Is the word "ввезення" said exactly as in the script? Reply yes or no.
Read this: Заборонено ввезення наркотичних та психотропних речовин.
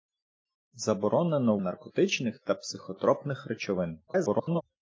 no